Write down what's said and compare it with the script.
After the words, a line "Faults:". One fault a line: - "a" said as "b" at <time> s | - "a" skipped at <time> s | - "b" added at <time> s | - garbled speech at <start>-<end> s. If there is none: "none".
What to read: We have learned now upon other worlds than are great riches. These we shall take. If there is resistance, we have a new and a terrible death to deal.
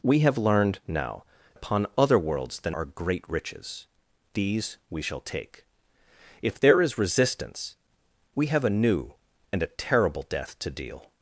We have learned now upon other worlds than are great riches. These we shall take. If there is resistance, we have a new and a terrible death to deal.
Faults:
none